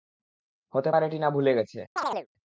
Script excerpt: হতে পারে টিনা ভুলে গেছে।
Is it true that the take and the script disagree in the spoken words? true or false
false